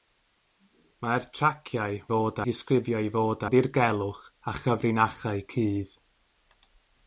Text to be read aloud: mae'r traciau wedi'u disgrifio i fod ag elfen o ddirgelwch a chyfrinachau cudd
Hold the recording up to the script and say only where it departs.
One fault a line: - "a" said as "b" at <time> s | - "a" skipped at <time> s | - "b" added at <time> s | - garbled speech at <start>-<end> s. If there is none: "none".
- "wedi'u" said as "fod" at 2.1 s
- "ag elfen" skipped at 3.5 s